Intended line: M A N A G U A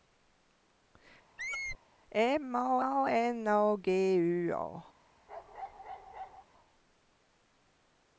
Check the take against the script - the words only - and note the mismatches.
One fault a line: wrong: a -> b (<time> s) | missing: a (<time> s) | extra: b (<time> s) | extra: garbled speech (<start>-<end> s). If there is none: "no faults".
extra: A (2.8 s)